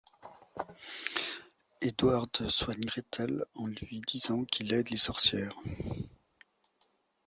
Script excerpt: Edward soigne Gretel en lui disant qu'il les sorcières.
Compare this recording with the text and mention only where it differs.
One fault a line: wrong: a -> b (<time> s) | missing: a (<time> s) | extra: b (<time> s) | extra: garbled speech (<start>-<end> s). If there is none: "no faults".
extra: aide (4.7 s)